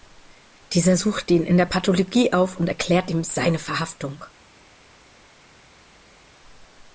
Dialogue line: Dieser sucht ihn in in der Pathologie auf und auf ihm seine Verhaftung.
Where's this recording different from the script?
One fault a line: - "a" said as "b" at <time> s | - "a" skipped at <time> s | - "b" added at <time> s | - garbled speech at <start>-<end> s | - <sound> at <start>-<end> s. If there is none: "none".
- "in" skipped at 1.6 s
- "auf" said as "erklärt" at 2.7 s